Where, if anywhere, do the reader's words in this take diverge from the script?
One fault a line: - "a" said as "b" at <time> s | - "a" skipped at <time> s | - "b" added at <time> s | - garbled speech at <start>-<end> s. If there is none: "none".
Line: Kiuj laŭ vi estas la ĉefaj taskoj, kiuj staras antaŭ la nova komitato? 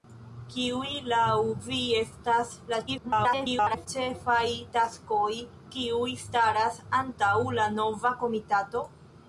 - garbled speech at 2.9-3.9 s